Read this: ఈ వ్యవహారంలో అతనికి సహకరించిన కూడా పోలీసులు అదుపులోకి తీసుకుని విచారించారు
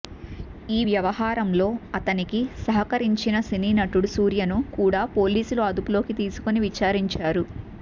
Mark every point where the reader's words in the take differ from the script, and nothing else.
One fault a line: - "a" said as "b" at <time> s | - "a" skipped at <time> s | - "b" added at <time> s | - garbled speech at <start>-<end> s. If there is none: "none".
- "సినీ నటుడు సూర్యను" added at 3.5 s